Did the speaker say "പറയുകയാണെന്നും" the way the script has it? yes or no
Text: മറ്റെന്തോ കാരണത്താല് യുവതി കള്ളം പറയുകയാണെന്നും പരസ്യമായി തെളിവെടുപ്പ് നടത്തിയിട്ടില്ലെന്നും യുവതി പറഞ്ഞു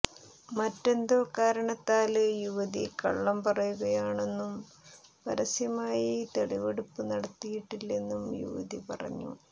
yes